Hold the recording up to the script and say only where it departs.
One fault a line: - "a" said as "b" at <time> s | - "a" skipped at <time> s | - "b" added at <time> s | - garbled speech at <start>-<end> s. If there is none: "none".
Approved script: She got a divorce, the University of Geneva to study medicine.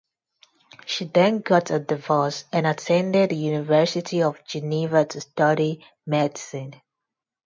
- "then" added at 1.1 s
- "and attended" added at 2.5 s